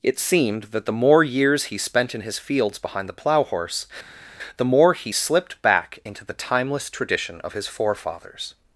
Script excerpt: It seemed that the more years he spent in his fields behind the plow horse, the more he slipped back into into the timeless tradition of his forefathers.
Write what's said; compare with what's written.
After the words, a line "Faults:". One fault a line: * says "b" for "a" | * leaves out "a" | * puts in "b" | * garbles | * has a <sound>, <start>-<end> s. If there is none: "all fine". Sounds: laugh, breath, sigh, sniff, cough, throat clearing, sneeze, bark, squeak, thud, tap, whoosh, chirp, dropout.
It seemed that the more years he spent in his fields behind the plow horse, the more he slipped back into the timeless tradition of his forefathers.
Faults:
* leaves out "into"